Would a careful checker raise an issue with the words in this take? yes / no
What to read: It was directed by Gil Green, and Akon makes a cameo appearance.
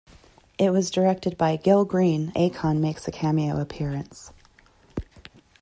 yes